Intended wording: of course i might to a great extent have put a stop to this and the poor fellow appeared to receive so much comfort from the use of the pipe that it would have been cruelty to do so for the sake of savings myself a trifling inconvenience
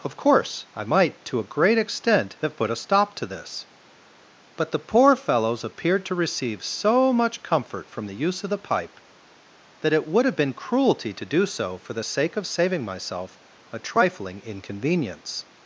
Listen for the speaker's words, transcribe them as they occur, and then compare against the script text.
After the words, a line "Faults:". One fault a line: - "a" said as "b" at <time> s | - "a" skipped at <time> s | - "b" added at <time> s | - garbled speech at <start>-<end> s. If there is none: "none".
of course i might to a great extent have put a stop to this but the poor fellows appeared to receive so much comfort from the use of the pipe that it would have been cruelty to do so for the sake of saving myself a trifling inconvenience
Faults:
- "and" said as "but" at 4.5 s
- "fellow" said as "fellows" at 5.2 s
- "savings" said as "saving" at 12.5 s